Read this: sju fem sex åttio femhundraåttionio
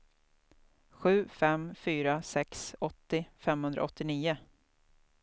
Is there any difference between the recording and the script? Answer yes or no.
yes